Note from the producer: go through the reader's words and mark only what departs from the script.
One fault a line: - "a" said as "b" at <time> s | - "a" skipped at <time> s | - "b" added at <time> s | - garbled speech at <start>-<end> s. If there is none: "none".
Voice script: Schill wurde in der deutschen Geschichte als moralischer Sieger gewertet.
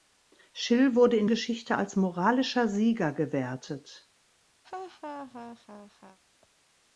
- "der deutschen" skipped at 1.3 s